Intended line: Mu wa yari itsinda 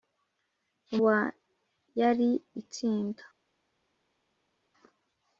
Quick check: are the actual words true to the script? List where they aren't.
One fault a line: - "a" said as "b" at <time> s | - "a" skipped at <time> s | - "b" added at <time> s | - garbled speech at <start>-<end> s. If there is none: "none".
none